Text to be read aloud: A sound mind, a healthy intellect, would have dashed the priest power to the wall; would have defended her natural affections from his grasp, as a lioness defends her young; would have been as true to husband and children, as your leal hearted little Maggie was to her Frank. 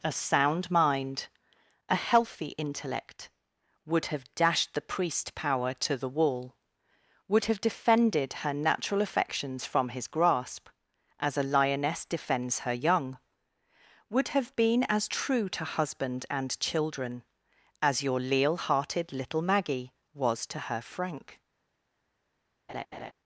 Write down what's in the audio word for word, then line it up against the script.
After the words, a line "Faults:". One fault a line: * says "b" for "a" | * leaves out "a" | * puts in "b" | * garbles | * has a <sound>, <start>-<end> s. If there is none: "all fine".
A sound mind, a healthy intellect, would have dashed the priest power to the wall; would have defended her natural affections from his grasp, as a lioness defends her young; would have been as true to husband and children, as your leal hearted little Maggie was to her Frank.
Faults:
* has a laugh, 22.7-23.1 s